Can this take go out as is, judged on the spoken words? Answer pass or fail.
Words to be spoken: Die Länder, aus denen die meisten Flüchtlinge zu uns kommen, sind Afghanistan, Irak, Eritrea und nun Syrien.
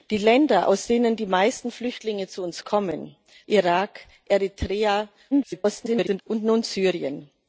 fail